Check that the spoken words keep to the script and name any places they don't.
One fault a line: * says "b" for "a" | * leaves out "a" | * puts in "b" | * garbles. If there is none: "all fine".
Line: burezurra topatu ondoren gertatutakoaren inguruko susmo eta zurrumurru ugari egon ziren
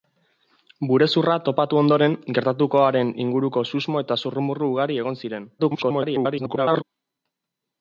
* garbles